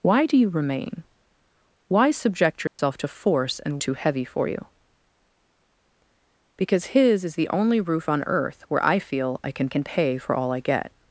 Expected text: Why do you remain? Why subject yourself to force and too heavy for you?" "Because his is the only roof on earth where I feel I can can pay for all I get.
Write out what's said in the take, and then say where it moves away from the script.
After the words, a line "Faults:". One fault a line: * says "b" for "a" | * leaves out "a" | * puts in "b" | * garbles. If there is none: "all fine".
Why do you remain? Why subject yourself to force and too heavy for you?" "Because his is the only roof on earth where I feel I can can pay for all I get.
Faults:
all fine